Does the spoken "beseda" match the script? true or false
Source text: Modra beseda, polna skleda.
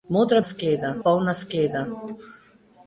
false